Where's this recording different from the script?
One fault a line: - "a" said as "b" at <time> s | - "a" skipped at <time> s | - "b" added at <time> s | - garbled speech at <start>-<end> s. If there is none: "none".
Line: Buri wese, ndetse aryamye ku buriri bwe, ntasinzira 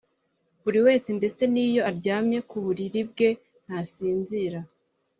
- "n'iyo" added at 1.5 s